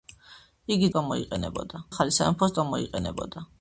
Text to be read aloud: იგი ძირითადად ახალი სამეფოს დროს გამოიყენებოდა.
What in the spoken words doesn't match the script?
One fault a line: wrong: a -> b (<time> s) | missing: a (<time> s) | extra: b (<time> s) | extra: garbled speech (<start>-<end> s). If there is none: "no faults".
wrong: ძირითადად -> გამოიყენებოდა (1.0 s)
missing: დროს (2.6 s)